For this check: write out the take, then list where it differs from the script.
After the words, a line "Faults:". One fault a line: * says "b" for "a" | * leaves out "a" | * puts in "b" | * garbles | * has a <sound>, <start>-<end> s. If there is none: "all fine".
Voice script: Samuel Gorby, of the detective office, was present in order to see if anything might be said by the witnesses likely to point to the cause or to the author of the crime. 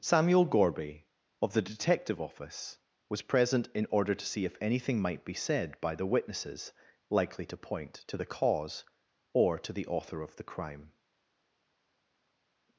Samuel Gorby, of the detective office, was present in order to see if anything might be said by the witnesses likely to point to the cause or to the author of the crime.
Faults:
all fine